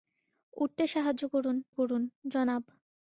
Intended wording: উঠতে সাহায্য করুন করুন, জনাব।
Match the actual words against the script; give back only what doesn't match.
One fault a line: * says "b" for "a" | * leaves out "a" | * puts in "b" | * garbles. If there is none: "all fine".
all fine